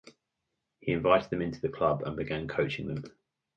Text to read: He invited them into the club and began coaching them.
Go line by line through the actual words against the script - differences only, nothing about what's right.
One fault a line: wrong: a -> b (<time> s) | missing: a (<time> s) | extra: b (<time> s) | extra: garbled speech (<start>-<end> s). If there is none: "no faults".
no faults